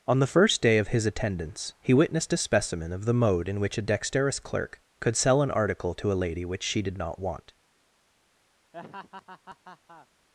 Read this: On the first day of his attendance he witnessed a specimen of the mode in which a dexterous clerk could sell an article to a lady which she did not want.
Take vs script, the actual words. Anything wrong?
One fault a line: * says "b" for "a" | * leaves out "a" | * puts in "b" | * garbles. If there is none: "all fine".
all fine